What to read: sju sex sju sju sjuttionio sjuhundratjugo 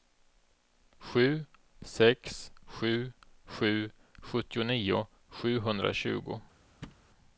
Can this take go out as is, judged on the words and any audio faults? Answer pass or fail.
fail